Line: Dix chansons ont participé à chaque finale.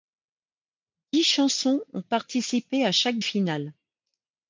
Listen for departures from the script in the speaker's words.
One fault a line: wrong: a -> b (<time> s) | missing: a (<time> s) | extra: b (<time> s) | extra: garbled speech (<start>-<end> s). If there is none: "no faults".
no faults